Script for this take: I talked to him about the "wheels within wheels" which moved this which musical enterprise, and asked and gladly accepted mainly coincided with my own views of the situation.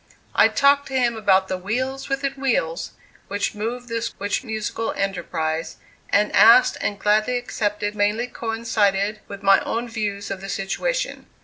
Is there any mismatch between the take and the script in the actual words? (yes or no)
no